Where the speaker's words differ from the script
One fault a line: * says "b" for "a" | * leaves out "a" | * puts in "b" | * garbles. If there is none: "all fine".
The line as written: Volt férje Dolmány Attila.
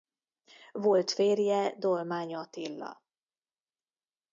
all fine